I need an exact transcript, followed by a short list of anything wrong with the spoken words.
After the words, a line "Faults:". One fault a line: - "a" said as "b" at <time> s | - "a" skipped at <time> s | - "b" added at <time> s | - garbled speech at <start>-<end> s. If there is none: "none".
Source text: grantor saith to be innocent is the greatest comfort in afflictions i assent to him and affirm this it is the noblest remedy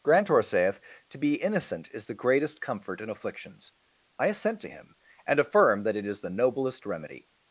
grantor saith to be innocent is the greatest comfort in afflictions i assent to him and affirm that it is the noblest remedy
Faults:
- "this" said as "that" at 5.8 s